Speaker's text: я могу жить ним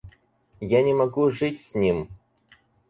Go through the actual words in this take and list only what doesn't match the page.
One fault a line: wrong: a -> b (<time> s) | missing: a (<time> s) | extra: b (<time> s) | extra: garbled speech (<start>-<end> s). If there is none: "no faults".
extra: не (0.8 s)
extra: с (1.6 s)